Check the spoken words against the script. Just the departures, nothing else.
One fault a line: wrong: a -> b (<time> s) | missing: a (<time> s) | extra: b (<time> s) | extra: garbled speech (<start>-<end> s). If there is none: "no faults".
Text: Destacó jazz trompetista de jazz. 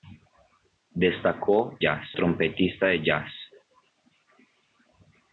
no faults